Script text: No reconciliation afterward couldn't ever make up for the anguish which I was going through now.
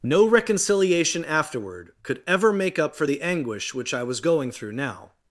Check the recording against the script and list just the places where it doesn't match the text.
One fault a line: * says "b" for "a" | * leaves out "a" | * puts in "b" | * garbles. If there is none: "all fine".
* says "could" for "couldn't"